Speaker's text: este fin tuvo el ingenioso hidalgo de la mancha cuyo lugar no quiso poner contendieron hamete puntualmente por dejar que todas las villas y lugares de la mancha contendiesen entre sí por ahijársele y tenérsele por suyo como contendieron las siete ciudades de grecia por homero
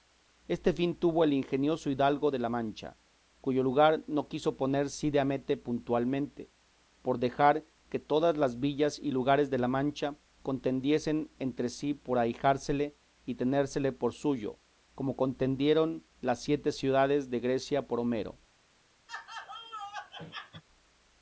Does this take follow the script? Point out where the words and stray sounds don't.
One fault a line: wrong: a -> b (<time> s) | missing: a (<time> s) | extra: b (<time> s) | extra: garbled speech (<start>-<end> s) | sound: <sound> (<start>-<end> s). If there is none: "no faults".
wrong: contendieron -> cide (4.9 s)
sound: laugh (19.1-20.6 s)